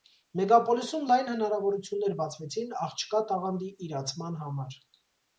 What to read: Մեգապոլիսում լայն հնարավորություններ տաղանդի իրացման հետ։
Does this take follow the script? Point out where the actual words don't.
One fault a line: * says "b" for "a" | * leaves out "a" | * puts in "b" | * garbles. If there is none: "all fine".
* puts in "բացվեցին աղջկա"
* says "համար" for "հետ"